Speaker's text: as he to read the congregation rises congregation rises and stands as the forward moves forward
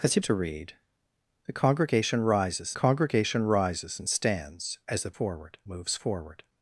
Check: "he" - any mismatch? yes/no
no